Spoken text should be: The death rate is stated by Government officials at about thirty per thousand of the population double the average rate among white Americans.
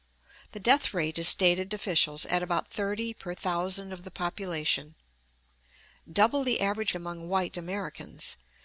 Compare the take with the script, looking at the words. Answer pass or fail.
fail